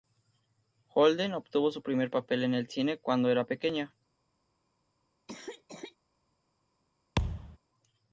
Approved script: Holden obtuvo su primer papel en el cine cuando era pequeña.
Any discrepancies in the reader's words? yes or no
no